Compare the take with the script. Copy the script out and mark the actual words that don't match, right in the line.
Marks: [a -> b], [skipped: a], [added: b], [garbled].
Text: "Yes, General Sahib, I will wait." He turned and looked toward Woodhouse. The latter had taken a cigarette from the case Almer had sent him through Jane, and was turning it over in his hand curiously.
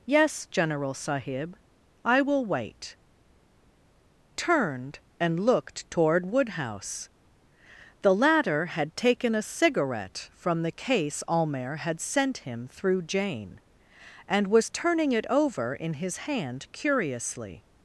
"Yes, General Sahib, I will wait." [skipped: He] turned and looked toward Woodhouse. The latter had taken a cigarette from the case Almer had sent him through Jane, and was turning it over in his hand curiously.